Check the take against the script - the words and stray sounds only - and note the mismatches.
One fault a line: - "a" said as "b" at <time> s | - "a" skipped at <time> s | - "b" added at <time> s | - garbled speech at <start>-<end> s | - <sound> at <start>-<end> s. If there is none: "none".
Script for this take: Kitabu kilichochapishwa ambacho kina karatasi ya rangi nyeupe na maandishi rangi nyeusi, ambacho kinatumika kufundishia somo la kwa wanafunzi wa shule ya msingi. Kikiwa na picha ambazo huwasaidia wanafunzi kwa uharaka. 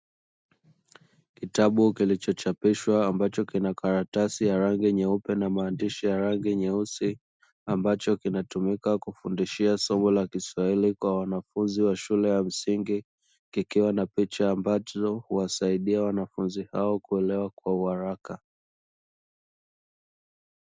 - "ya" added at 6.0 s
- "kiswahili" added at 10.3 s
- "hao kuelewa" added at 16.7 s